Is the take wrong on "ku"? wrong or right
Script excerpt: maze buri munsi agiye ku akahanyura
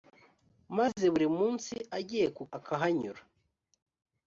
right